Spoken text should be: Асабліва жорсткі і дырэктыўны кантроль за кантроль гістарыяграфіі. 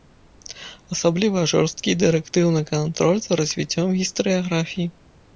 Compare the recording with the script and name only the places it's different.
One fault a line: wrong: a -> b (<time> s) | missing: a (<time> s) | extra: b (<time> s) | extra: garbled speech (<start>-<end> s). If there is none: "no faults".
wrong: кантроль -> развіццём (3.4 s)